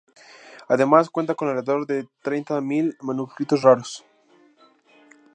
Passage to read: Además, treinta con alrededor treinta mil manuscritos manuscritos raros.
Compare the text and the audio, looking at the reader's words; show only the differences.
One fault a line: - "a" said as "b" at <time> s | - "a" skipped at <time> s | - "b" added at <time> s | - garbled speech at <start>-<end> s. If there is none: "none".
- "treinta" said as "cuenta" at 1.1 s
- "de" added at 1.8 s
- "manuscritos" skipped at 3.6 s